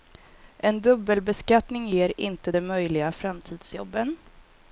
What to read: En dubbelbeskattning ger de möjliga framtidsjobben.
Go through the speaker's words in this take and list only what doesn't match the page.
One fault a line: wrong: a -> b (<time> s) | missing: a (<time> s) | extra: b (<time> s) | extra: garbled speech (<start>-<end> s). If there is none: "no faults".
extra: inte (2.2 s)